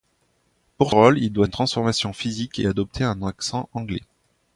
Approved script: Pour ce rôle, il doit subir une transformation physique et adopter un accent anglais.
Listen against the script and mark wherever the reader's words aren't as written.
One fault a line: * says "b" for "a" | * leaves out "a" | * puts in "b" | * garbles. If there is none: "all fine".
* leaves out "ce"
* leaves out "subir"